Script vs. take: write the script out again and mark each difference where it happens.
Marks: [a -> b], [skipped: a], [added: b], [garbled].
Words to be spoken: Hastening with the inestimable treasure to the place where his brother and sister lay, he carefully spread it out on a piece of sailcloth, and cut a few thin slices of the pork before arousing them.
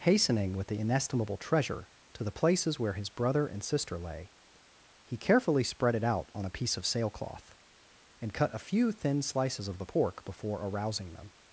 Hastening with the inestimable treasure to the [place -> places] where his brother and sister lay, he carefully spread it out on a piece of sailcloth, and cut a few thin slices of the pork before arousing them.